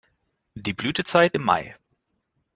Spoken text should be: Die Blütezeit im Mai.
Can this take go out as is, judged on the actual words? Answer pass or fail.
pass